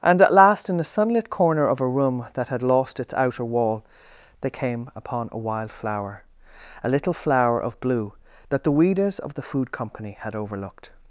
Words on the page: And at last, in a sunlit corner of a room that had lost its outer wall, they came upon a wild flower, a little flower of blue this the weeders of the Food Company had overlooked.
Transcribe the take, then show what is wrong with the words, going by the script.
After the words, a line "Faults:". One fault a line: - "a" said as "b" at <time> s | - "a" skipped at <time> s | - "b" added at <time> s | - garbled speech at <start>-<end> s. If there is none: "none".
And at last, in a sunlit corner of a room that had lost its outer wall, they came upon a wild flower, a little flower of blue that the weeders of the Food Company had overlooked.
Faults:
- "this" said as "that" at 8.5 s